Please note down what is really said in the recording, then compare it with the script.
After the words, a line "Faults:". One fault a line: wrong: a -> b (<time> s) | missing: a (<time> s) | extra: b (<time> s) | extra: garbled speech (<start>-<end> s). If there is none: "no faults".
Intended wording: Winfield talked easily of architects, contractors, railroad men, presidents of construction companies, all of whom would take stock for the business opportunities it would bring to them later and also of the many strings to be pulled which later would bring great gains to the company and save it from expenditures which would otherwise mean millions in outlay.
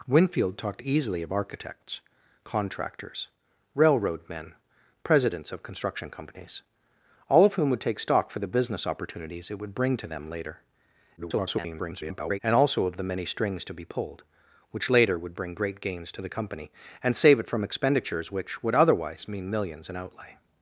Winfield talked easily of architects, contractors, railroad men, presidents of construction companies, all of whom would take stock for the business opportunities it would bring to them later [garbled] and also of the many strings to be pulled which later would bring great gains to the company and save it from expenditures which would otherwise mean millions in outlay.
Faults:
extra: garbled speech (11.2-12.4 s)